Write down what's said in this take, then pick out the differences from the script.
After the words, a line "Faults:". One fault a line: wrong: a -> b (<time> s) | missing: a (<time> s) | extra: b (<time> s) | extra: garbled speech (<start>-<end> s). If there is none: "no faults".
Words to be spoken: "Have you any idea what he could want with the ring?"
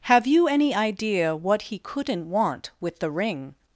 "Have you any idea what he couldn't want with the ring?"
Faults:
wrong: could -> couldn't (1.8 s)